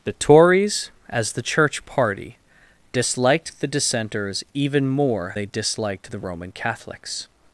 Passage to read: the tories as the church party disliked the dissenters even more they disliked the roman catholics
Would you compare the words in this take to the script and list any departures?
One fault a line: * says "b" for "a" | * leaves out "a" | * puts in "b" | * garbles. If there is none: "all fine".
all fine